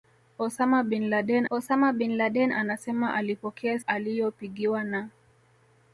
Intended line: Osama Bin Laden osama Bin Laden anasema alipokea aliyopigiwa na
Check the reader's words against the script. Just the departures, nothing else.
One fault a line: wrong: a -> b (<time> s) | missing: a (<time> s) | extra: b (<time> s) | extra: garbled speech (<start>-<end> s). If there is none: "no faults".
no faults